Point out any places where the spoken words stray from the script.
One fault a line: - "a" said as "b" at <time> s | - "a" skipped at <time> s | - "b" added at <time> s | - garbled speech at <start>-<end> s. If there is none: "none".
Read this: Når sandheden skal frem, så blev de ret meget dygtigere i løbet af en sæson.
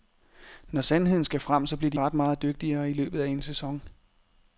none